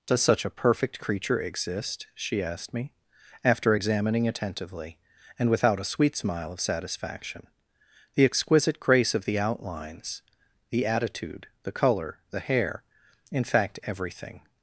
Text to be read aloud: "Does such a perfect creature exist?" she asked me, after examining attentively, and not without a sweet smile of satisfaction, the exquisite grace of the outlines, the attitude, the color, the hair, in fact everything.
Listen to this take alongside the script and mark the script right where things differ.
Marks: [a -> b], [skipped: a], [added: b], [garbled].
"Does such a perfect creature exist?" she asked me, after examining attentively, and [skipped: not] without a sweet smile of satisfaction, the exquisite grace of the outlines, the attitude, the color, the hair, in fact everything.